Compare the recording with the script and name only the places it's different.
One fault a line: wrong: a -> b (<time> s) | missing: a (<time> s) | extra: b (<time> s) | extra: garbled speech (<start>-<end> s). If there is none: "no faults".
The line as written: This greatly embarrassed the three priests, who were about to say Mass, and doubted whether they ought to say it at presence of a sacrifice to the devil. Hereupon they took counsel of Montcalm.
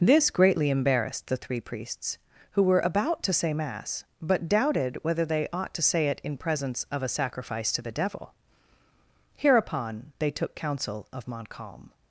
wrong: and -> but (4.2 s)
wrong: at -> in (6.2 s)